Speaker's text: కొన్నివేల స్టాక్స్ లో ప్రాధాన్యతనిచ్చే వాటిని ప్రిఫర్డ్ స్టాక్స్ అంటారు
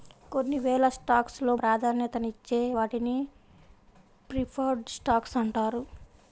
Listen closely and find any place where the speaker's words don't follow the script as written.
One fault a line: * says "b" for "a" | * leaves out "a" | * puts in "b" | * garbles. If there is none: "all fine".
all fine